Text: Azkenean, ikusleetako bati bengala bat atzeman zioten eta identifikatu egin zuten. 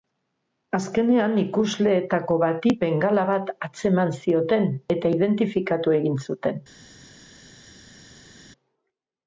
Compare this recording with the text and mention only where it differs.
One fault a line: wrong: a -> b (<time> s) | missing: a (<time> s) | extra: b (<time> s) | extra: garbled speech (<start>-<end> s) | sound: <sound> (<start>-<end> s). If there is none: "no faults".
no faults